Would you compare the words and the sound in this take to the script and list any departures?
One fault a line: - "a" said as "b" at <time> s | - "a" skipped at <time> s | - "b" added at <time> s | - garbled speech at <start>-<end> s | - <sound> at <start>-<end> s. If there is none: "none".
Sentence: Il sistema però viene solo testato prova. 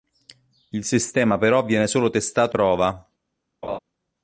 - laugh at 3.6-3.8 s